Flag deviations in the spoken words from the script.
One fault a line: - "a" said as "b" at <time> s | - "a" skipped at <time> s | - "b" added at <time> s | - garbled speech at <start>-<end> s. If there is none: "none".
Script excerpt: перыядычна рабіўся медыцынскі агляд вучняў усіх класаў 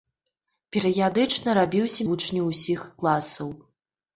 - "медыцынскі агляд" skipped at 2.1 s